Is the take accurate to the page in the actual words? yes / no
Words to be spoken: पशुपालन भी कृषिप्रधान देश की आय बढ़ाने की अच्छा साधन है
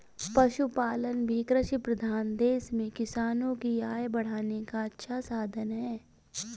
no